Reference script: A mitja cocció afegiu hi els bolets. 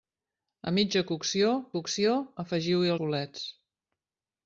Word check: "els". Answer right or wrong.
wrong